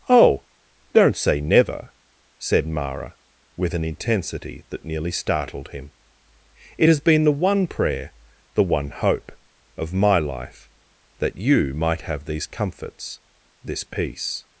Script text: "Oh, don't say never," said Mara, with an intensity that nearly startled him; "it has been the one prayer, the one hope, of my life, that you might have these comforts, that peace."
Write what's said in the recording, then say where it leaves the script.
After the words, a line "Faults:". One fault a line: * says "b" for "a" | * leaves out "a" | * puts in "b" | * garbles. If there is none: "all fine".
"Oh, don't say never," said Mara, with an intensity that nearly startled him; "it has been the one prayer, the one hope, of my life, that you might have these comforts, this peace."
Faults:
* says "this" for "that"